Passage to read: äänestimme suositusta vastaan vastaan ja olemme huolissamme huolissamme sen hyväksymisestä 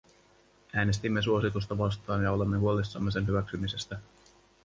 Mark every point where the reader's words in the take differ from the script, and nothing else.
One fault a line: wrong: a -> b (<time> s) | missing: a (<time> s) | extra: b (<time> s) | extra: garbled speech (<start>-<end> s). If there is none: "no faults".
missing: vastaan (2.2 s)
missing: huolissamme (3.1 s)